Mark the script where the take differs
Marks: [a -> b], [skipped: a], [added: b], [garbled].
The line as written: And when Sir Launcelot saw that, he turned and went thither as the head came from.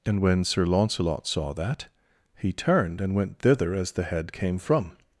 And when Sir Launcelot saw that, he turned and went thither as the head came from.